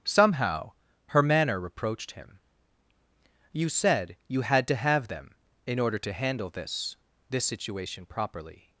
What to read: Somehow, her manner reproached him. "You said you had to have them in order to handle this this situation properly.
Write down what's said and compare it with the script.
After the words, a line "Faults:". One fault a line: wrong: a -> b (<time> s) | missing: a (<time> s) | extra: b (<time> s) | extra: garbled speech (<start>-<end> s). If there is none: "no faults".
Somehow, her manner reproached him. "You said you had to have them in order to handle this this situation properly.
Faults:
no faults